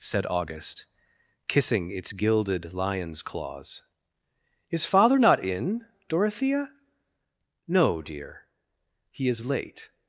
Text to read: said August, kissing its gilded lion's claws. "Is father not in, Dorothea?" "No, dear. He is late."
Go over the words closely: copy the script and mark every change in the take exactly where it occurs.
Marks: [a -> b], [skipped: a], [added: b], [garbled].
said August, kissing its gilded lion's claws. "Is father not in, Dorothea?" "No, dear. He is late."